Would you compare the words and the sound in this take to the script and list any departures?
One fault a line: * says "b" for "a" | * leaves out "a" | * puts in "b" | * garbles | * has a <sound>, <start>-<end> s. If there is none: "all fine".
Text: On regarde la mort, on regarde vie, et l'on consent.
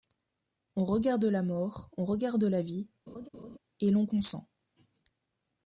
* puts in "la"
* has a laugh, 3.1-3.6 s